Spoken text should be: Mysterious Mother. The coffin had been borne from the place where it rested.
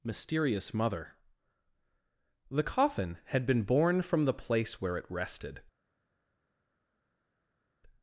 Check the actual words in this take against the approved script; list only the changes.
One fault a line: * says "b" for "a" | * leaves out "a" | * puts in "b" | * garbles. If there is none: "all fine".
all fine